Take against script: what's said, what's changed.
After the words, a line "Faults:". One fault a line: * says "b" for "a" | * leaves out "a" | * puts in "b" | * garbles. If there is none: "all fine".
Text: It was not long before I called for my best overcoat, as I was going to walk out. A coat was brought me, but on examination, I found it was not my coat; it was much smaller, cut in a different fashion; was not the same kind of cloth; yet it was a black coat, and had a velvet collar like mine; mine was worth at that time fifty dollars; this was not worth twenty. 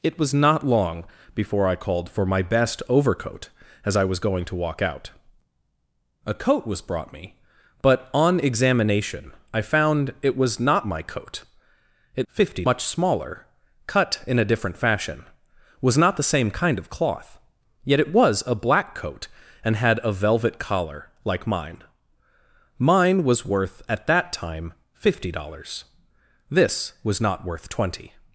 It was not long before I called for my best overcoat, as I was going to walk out. A coat was brought me, but on examination, I found it was not my coat; it fifty much smaller, cut in a different fashion; was not the same kind of cloth; yet it was a black coat, and had a velvet collar like mine; mine was worth at that time fifty dollars; this was not worth twenty.
Faults:
* says "fifty" for "was"